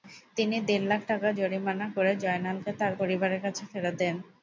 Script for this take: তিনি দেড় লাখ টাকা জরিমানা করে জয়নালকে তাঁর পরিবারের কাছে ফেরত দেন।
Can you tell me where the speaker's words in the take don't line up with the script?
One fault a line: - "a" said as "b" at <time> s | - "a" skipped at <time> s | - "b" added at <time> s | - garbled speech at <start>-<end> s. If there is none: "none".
none